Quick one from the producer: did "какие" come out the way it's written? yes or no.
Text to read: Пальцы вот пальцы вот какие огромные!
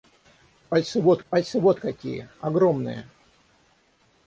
yes